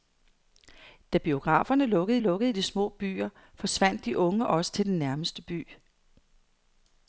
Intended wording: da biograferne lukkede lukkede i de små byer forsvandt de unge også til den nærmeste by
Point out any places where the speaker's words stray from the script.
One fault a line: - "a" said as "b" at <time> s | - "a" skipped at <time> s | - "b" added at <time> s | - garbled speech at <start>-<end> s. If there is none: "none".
none